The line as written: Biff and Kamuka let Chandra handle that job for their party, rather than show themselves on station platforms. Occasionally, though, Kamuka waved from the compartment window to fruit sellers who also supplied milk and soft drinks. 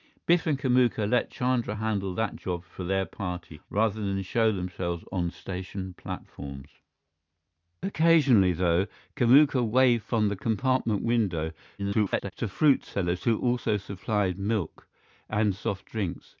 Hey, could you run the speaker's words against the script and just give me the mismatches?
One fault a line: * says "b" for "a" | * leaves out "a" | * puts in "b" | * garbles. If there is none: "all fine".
* garbles